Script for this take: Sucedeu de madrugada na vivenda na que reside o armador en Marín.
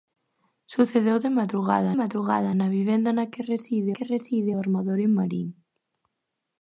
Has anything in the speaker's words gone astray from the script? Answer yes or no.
yes